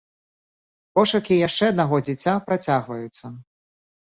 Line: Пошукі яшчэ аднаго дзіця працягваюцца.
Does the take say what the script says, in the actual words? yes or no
yes